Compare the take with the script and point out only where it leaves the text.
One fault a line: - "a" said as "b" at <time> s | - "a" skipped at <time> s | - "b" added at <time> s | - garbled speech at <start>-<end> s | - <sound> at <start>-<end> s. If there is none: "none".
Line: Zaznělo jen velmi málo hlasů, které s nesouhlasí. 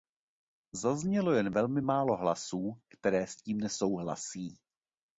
- "tím" added at 3.4 s